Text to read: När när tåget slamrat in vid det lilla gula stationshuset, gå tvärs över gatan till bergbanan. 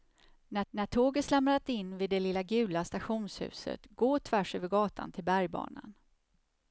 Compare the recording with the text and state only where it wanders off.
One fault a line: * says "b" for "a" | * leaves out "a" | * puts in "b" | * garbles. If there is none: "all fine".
all fine